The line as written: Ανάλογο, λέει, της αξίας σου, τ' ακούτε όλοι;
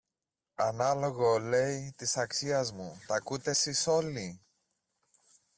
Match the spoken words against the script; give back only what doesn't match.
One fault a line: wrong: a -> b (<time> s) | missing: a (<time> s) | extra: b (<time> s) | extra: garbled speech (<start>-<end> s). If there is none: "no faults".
wrong: σου -> μου (2.7 s)
extra: σεις (3.5 s)